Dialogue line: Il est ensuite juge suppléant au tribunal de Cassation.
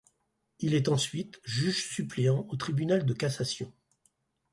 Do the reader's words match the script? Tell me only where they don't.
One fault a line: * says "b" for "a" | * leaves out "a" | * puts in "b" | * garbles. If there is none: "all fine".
all fine